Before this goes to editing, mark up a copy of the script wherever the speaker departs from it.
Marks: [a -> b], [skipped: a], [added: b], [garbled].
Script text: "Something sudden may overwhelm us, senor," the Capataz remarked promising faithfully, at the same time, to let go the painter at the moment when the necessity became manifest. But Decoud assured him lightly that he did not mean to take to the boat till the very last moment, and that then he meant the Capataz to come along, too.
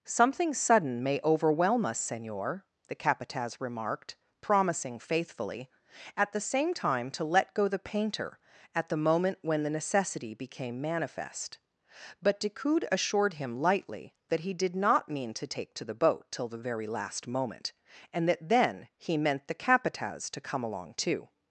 "Something sudden may overwhelm us, senor," the Capataz remarked promising faithfully, at the same time, to let go the painter at the moment when the necessity became manifest. But Decoud assured him lightly that he did not mean to take to the boat till the very last moment, and that then he meant the Capataz to come along, too.